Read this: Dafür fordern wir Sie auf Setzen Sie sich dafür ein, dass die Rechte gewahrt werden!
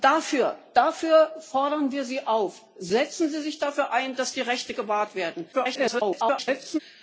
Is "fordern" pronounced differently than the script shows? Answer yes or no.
no